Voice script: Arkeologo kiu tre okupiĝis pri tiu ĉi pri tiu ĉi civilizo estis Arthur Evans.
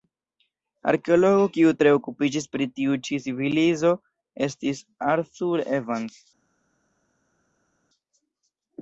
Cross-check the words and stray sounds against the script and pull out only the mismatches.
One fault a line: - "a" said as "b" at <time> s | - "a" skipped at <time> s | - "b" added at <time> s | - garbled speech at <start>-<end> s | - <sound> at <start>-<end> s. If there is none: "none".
- "pri tiu ĉi" skipped at 3.2 s